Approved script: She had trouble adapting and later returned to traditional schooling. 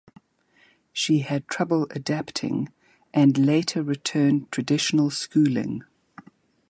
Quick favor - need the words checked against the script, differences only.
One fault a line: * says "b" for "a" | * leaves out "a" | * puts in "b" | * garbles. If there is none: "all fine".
* leaves out "to"